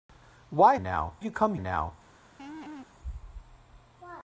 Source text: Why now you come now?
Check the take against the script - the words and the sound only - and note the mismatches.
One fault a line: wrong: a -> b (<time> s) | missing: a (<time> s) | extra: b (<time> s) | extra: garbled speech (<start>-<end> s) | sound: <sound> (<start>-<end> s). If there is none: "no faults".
sound: laugh (2.4-2.9 s)